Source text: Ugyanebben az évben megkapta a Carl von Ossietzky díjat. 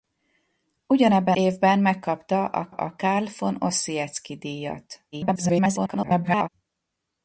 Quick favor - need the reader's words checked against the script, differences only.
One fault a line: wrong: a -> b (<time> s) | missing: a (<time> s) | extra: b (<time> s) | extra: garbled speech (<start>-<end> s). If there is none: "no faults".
missing: az (1.4 s)
extra: a (2.7 s)
extra: garbled speech (5.1-6.5 s)